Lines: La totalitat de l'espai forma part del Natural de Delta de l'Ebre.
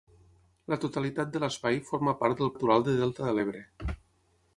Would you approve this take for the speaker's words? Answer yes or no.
yes